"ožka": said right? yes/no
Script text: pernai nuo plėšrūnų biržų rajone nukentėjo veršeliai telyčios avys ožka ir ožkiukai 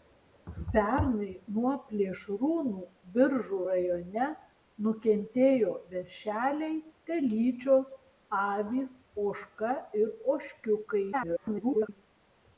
yes